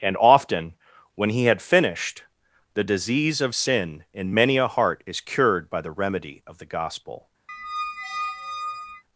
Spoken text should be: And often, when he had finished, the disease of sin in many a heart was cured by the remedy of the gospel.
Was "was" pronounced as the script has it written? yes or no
no